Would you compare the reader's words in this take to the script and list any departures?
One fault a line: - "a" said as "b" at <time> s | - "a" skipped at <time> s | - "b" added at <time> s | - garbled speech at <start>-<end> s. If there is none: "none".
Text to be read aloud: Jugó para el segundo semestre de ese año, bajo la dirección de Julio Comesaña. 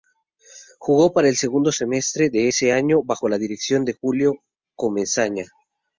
none